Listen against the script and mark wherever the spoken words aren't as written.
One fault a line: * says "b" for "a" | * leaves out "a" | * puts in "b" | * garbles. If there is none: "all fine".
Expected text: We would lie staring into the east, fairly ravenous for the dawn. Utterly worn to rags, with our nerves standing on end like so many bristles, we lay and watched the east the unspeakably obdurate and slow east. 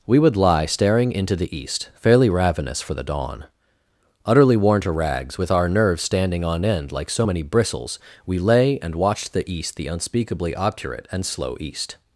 all fine